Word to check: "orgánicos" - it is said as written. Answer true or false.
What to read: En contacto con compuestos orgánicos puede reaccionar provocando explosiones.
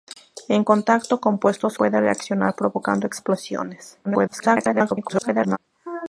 false